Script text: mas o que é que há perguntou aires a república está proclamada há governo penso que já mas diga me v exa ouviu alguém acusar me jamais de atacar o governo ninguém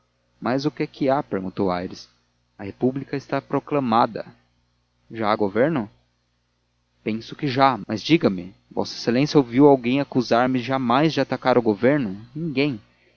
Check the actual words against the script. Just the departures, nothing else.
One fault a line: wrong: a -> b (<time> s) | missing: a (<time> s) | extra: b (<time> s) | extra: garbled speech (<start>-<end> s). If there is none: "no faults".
extra: já (5.1 s)